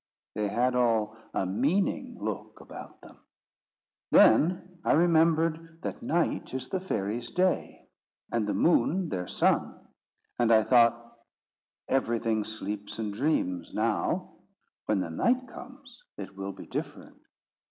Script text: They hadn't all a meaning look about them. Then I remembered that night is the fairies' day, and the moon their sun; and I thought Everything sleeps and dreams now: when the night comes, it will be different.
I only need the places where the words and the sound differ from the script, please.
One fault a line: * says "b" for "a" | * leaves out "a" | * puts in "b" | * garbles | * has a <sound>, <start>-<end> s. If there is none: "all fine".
* says "had" for "hadn't"